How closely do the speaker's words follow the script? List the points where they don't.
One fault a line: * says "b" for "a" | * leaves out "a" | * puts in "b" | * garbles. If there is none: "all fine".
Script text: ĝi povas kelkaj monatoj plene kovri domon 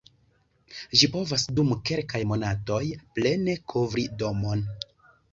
* puts in "dum"